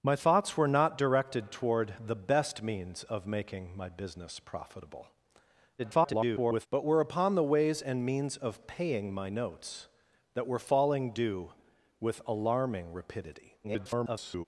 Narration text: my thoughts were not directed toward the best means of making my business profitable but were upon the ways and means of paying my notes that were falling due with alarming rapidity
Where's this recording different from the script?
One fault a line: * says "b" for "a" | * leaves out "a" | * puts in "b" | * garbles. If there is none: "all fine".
* garbles
* garbles